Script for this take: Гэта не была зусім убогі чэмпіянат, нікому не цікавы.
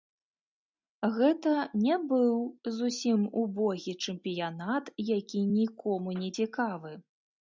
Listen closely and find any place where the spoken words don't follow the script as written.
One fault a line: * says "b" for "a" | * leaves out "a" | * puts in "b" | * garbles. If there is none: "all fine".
* says "быў" for "была"
* puts in "які"